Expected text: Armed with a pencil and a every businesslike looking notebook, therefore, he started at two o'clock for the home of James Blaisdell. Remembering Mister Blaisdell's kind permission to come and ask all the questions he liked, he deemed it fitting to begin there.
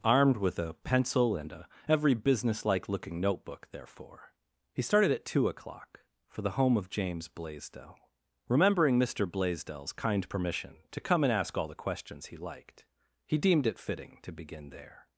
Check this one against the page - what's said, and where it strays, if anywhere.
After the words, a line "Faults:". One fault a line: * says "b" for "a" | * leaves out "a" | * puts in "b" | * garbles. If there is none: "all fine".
Armed with a pencil and a every businesslike looking notebook, therefore, he started at two o'clock for the home of James Blaisdell. Remembering Mister Blaisdell's kind permission to come and ask all the questions he liked, he deemed it fitting to begin there.
Faults:
all fine